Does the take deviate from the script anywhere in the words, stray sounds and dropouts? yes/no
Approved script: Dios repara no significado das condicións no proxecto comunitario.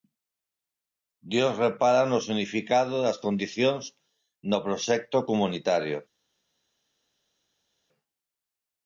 no